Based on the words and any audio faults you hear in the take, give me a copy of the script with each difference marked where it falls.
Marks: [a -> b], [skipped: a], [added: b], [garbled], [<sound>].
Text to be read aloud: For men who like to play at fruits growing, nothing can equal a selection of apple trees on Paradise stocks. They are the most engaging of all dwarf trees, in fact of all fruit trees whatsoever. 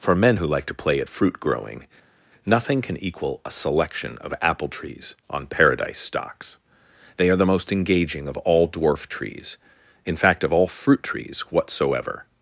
For men who like to play at [fruits -> fruit] growing, nothing can equal a selection of apple trees on Paradise stocks. They are the most engaging of all dwarf trees, in fact of all fruit trees whatsoever.